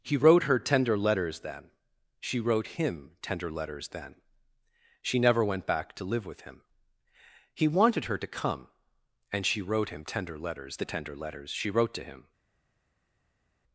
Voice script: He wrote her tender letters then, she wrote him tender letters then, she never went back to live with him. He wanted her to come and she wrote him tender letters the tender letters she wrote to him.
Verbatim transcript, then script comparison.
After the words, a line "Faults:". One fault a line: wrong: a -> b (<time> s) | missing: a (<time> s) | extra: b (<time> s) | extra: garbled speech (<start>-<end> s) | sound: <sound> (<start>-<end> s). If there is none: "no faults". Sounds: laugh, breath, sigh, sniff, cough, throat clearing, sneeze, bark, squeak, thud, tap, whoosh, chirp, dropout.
He wrote her tender letters then, she wrote him tender letters then, she never went back to live with him. He wanted her to come and she wrote him tender letters the tender letters she wrote to him.
Faults:
no faults